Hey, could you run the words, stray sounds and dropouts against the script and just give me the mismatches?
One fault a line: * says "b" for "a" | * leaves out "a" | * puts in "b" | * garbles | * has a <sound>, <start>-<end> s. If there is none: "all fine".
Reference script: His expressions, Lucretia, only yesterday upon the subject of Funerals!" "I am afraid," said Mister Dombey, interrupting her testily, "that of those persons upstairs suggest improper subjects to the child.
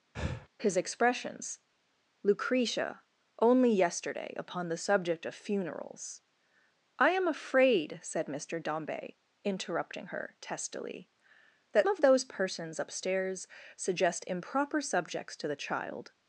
* has a breath, 0.1-0.5 s